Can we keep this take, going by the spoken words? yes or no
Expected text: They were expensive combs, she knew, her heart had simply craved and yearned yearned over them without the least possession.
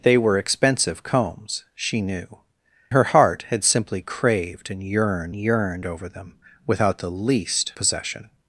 yes